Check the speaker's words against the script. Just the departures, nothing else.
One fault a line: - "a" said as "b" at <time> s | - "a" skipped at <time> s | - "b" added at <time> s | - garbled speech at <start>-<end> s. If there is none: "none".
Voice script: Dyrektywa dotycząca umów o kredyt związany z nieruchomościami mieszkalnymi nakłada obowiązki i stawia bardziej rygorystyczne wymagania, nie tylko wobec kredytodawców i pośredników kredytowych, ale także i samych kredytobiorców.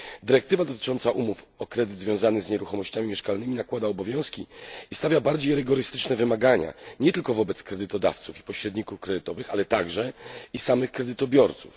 none